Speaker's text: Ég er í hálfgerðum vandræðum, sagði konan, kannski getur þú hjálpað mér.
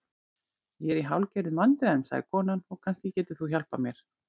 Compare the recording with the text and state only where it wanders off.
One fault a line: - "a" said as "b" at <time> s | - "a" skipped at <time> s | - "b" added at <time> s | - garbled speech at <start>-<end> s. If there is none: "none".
- "og" added at 2.7 s